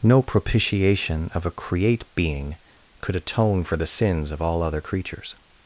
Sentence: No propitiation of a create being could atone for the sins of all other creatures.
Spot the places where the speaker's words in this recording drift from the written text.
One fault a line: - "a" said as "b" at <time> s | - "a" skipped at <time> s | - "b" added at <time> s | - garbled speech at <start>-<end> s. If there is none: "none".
none